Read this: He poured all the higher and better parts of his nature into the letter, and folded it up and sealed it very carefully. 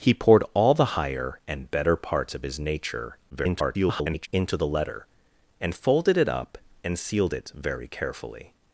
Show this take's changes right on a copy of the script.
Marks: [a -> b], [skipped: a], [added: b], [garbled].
He poured all the higher and better parts of his nature [garbled] into the letter, and folded it up and sealed it very carefully.